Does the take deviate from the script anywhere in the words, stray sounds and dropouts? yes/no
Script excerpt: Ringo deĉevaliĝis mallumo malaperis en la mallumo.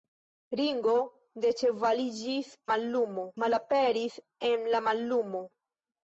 no